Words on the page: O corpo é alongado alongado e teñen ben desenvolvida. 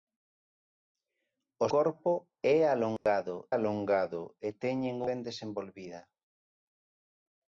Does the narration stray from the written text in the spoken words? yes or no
no